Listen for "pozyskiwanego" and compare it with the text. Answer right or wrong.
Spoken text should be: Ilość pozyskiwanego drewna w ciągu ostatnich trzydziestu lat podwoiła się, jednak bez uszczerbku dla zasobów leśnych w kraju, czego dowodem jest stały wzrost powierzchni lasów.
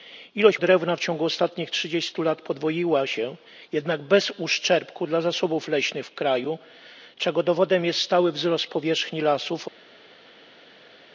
wrong